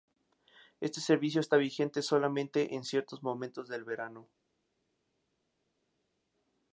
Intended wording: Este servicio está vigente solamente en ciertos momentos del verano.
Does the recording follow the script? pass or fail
pass